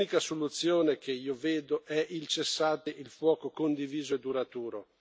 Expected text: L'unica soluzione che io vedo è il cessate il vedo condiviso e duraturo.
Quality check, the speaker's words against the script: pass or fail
fail